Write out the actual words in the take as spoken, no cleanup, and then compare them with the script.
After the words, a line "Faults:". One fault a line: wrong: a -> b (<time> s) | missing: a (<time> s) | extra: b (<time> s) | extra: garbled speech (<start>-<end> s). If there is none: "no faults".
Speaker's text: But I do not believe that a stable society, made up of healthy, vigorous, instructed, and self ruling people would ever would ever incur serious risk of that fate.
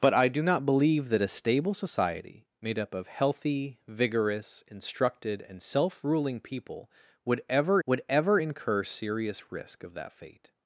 But I do not believe that a stable society, made up of healthy, vigorous, instructed, and self ruling people would ever would ever incur serious risk of that fate.
Faults:
no faults